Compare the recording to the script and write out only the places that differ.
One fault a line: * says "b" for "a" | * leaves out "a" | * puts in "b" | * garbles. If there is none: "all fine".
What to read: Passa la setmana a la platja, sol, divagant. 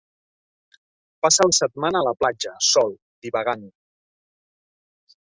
all fine